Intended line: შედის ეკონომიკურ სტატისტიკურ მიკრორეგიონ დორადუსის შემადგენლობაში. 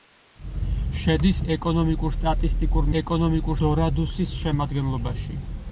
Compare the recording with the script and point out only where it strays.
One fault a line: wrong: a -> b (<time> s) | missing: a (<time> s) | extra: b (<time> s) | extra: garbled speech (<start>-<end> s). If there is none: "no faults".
wrong: მიკრორეგიონ -> ეკონომიკურ (3.0 s)